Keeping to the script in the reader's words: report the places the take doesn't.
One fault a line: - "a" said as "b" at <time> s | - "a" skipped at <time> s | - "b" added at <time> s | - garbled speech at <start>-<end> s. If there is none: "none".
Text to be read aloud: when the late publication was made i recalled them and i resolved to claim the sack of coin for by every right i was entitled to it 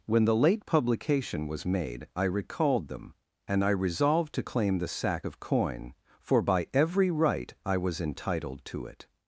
none